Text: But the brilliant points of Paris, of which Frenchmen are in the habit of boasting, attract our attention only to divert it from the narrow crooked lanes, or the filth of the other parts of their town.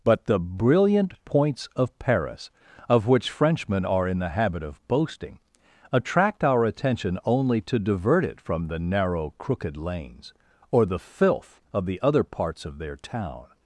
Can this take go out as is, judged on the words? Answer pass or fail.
pass